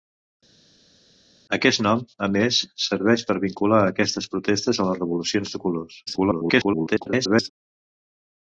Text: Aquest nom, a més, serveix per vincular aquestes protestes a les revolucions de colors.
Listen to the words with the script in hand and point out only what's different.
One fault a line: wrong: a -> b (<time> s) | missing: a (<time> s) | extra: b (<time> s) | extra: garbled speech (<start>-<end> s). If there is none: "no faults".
extra: garbled speech (6.1-7.5 s)